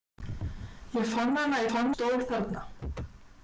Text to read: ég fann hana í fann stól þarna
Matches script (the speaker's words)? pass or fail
pass